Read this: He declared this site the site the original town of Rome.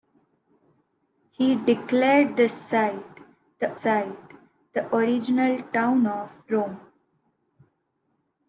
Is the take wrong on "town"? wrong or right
right